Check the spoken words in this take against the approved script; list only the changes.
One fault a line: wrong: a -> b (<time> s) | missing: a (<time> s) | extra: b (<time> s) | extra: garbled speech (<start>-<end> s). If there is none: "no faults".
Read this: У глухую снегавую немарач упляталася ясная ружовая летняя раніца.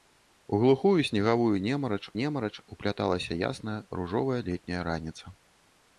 extra: немарач (2.2 s)